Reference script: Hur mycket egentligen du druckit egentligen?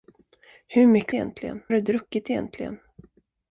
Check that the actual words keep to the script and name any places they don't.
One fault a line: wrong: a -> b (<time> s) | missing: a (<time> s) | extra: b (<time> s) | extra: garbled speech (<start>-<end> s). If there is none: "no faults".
no faults